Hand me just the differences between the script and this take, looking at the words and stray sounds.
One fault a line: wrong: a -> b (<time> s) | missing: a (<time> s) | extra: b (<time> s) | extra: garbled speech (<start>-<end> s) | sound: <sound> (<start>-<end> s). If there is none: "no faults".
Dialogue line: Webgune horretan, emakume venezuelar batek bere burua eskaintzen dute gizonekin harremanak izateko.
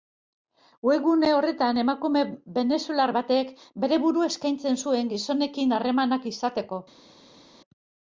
wrong: dute -> zuen (4.9 s)